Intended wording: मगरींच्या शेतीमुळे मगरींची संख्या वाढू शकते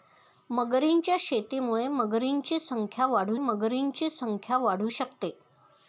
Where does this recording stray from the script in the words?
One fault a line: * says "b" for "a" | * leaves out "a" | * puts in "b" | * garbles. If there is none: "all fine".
* puts in "मगरींची संख्या वाढू"